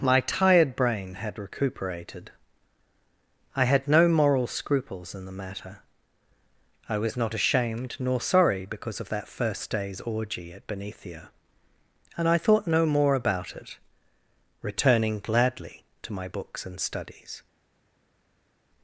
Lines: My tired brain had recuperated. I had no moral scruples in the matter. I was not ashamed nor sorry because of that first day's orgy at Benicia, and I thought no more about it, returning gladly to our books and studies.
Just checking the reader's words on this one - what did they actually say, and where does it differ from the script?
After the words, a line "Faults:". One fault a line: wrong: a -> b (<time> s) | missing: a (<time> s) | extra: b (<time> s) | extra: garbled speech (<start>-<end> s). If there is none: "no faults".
My tired brain had recuperated. I had no moral scruples in the matter. I was not ashamed nor sorry because of that first day's orgy at Benicia, and I thought no more about it, returning gladly to my books and studies.
Faults:
wrong: our -> my (16.1 s)